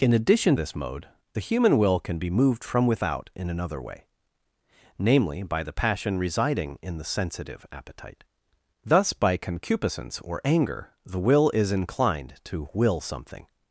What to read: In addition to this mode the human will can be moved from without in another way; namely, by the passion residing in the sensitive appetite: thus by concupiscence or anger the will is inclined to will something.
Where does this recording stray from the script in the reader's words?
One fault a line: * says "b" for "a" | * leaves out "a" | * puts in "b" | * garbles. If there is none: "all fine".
* leaves out "to"